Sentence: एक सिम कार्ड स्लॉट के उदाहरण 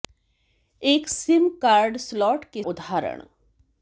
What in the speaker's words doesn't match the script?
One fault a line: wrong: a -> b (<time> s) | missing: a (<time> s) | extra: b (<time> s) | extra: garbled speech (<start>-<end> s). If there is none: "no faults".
no faults